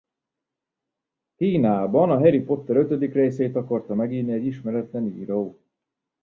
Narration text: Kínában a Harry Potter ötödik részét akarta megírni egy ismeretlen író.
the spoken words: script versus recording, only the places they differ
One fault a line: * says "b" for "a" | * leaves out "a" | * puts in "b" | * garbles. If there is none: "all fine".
all fine